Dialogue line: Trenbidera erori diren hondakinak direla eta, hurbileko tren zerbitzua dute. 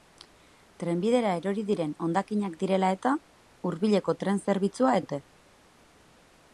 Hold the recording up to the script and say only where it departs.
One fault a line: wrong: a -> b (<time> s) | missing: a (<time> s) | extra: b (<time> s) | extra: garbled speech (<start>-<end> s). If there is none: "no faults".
no faults